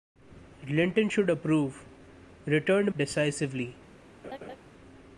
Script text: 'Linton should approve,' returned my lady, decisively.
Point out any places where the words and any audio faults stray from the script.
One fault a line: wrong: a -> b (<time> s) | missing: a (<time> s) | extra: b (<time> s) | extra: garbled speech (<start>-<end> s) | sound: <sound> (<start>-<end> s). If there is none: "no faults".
missing: my lady (2.9 s)
sound: laugh (4.2-4.6 s)